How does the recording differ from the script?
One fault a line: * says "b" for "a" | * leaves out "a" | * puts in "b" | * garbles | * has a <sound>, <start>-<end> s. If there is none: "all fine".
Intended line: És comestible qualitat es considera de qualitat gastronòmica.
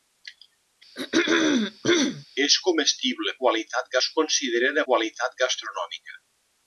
* has a throat clearing, 1.0-2.3 s